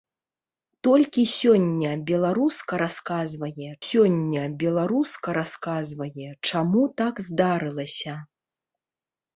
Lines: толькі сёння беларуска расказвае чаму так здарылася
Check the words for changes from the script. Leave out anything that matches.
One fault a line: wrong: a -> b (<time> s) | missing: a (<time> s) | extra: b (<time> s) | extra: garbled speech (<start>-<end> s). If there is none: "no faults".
extra: сёння беларуска расказвае (3.9 s)